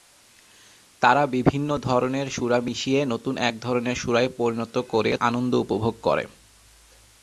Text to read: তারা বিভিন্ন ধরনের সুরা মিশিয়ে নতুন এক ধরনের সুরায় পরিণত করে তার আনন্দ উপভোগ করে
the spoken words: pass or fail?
fail